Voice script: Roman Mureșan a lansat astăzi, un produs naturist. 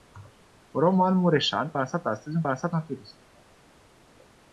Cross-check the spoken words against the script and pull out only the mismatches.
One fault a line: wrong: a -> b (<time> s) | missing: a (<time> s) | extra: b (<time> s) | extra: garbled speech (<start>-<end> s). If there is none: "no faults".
missing: a (1.7 s)
wrong: produs -> lansat (2.4 s)